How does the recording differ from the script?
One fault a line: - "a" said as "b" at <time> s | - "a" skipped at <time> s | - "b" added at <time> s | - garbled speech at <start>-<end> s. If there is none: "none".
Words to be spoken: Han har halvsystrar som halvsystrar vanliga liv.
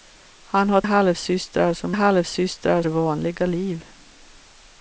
none